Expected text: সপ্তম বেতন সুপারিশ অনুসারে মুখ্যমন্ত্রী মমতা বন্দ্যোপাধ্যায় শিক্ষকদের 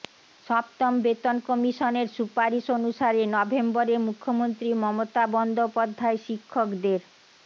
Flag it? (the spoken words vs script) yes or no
yes